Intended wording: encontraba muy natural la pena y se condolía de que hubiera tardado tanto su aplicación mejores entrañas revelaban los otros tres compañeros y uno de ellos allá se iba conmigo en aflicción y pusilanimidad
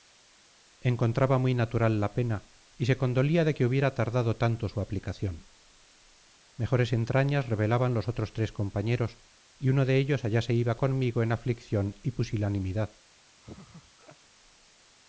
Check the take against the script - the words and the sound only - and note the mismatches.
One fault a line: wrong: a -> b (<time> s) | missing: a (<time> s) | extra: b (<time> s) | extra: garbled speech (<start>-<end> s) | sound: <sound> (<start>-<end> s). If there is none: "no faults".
sound: laugh (13.4-14.2 s)